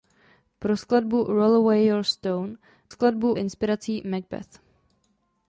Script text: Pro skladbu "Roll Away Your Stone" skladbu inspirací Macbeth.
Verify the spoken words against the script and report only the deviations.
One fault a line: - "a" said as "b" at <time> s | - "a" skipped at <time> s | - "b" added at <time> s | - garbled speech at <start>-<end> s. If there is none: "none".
none